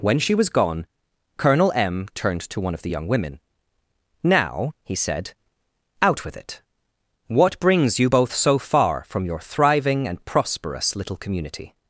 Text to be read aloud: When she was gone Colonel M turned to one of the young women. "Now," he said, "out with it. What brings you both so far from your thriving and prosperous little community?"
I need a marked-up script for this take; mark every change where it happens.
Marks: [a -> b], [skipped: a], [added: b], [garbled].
When she was gone Colonel M turned to one of the young women. "Now," he said, "out with it. What brings you both so far from your thriving and prosperous little community?"